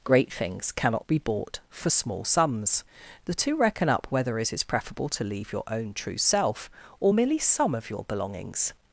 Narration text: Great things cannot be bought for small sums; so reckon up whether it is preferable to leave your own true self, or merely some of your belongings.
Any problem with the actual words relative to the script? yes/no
yes